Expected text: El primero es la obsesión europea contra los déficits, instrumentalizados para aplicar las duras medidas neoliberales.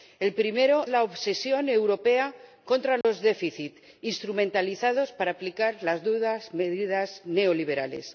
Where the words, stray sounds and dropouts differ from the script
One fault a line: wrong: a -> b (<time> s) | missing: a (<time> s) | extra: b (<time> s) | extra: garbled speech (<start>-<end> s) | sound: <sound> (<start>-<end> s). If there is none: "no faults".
missing: es (0.9 s)
sound: dropout (3.0-3.0 s)